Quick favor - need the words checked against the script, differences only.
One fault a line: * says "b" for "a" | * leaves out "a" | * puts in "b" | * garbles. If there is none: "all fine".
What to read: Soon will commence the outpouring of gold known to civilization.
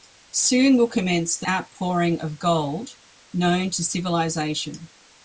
all fine